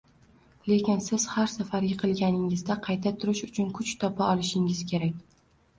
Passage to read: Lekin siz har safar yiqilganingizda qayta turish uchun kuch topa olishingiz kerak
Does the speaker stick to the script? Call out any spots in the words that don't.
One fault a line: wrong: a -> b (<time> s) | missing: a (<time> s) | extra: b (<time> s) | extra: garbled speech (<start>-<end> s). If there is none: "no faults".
no faults